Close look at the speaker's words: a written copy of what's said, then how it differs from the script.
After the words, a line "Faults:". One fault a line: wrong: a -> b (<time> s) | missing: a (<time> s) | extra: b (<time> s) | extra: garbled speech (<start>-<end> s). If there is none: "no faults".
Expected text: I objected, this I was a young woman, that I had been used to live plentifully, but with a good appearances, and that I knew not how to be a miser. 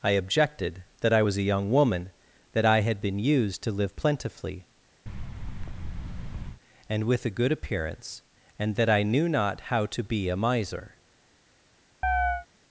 I objected, that I was a young woman, that I had been used to live plentifully, and with a good appearance, and that I knew not how to be a miser.
Faults:
wrong: this -> that (1.0 s)
wrong: but -> and (6.9 s)
wrong: appearances -> appearance (7.5 s)